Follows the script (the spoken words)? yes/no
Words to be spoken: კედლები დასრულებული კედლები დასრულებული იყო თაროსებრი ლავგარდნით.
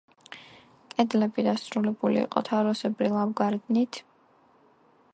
no